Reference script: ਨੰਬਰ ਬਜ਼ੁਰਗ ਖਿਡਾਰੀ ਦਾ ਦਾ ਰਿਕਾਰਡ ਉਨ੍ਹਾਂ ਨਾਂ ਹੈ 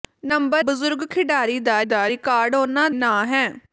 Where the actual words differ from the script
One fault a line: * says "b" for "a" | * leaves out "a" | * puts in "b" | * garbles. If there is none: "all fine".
all fine